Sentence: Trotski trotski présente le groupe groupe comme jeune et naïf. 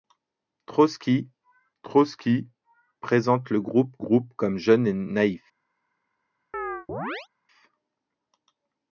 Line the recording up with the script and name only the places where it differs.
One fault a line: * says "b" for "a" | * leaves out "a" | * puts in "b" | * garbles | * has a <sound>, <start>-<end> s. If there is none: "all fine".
* has a chirp, 6.5-7.3 s